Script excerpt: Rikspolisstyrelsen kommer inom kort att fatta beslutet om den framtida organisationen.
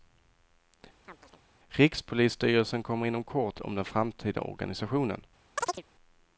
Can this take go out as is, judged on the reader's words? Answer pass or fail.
fail